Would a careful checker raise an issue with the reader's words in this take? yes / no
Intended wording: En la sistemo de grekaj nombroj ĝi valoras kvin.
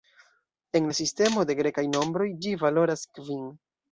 no